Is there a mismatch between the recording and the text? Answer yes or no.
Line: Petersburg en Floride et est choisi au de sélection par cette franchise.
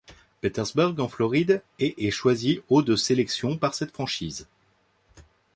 no